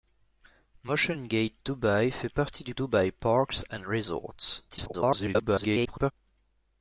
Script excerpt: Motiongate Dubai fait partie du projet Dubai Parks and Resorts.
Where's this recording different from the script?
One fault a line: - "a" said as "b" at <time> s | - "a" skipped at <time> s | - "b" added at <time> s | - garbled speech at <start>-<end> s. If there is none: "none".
- "projet" skipped at 2.7 s
- garbled speech at 4.7-6.1 s